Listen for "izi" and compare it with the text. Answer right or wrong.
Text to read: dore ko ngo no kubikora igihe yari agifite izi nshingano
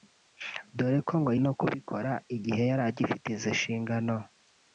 right